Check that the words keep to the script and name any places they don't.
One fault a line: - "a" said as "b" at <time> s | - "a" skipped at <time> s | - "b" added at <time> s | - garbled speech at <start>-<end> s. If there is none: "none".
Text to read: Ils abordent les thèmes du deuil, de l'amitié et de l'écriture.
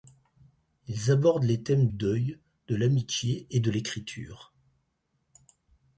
- "du" skipped at 1.9 s